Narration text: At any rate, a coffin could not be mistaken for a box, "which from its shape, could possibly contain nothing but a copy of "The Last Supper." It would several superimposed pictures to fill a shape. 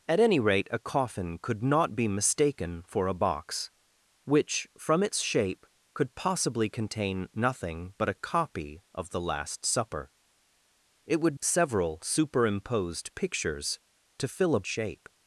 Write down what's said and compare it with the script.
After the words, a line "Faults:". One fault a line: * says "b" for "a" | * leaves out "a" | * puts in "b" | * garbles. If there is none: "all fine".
At any rate, a coffin could not be mistaken for a box, "which from its shape, could possibly contain nothing but a copy of "The Last Supper." It would several superimposed pictures to fill a shape.
Faults:
all fine